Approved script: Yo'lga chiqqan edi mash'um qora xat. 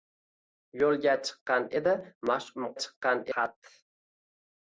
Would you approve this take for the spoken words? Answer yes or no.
no